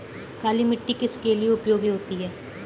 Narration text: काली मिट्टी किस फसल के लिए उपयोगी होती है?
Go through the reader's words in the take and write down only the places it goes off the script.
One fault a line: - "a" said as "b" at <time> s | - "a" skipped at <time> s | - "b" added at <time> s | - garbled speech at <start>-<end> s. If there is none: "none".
- "फसल" skipped at 1.1 s